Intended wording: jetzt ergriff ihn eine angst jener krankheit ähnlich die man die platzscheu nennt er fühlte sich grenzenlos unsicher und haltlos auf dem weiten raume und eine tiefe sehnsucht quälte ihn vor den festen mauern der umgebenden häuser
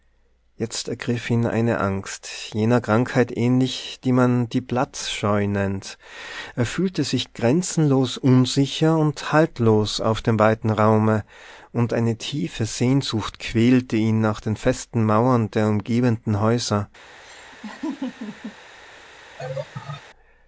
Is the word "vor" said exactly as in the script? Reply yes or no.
no